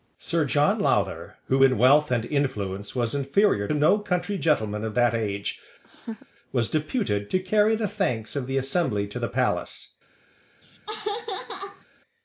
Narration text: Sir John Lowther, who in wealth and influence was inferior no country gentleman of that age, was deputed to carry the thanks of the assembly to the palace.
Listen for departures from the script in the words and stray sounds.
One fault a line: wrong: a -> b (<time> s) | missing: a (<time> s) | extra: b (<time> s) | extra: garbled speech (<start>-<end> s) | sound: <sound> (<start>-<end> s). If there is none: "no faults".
sound: laugh (5.8-6.3 s)
sound: laugh (10.6-11.9 s)